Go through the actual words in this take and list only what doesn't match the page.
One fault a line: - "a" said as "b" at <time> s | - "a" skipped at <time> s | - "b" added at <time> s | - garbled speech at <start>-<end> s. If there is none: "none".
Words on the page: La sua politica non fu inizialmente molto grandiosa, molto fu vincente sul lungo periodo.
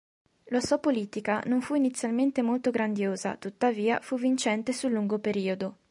- "molto" said as "tuttavia" at 3.4 s